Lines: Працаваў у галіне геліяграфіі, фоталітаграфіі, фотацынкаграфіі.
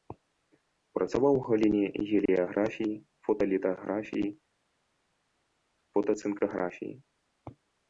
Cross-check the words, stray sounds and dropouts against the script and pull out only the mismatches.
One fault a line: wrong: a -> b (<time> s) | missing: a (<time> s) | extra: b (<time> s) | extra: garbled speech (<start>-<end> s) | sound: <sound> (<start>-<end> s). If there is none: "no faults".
no faults